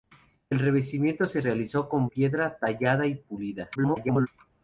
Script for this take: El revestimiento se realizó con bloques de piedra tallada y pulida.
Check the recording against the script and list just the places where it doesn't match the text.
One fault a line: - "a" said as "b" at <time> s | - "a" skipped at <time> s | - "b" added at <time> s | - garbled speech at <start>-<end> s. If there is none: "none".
- "bloques de" skipped at 2.1 s
- garbled speech at 3.7-4.3 s